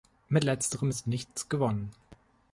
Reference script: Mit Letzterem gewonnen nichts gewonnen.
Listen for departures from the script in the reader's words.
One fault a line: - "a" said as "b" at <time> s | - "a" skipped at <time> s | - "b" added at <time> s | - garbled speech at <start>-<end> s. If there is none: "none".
- "gewonnen" said as "ist" at 0.9 s